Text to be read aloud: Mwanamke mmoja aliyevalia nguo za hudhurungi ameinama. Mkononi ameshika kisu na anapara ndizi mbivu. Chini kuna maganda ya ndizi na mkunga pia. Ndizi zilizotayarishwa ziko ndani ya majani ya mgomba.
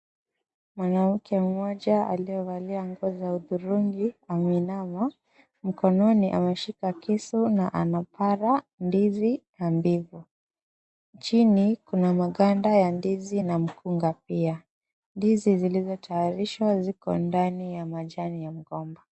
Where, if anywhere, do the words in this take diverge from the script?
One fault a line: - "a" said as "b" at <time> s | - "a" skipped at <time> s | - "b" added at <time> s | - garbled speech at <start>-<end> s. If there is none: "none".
none